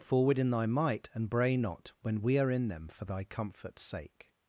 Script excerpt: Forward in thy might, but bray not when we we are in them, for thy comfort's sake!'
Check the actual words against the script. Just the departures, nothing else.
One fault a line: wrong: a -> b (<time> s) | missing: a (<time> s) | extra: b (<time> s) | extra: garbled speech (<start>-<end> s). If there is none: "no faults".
wrong: but -> and (1.1 s)
missing: we (2.4 s)